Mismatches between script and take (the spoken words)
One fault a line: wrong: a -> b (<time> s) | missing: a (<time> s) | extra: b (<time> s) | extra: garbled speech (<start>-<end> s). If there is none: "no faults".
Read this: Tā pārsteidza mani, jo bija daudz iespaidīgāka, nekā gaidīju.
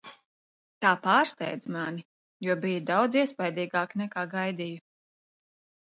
no faults